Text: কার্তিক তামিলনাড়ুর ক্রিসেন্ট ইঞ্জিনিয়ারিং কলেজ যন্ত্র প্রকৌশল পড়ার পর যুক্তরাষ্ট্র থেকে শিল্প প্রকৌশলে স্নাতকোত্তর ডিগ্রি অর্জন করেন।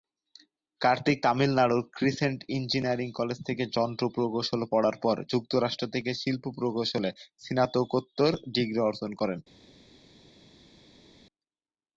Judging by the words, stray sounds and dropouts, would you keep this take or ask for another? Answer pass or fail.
fail